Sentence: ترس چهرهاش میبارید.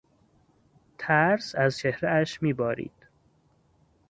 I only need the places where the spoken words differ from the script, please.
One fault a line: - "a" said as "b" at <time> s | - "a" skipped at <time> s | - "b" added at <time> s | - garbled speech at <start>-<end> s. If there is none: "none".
- "از" added at 1.6 s